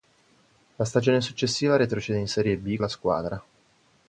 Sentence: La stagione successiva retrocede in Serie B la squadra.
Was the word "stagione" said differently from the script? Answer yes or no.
no